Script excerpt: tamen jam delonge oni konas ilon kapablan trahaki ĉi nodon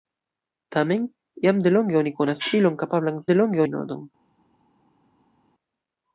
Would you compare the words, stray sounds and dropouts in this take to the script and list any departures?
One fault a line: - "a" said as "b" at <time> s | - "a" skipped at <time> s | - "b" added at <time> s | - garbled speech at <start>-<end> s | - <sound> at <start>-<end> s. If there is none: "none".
- "trahaki" said as "delonge" at 3.3 s